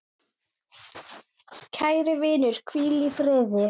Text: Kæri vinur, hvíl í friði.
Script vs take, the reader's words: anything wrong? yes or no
no